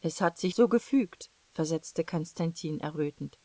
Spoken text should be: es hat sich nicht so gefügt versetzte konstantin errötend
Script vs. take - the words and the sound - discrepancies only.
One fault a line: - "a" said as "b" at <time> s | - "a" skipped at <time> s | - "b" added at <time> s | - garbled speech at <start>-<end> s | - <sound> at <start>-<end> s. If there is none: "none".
- "nicht" skipped at 0.6 s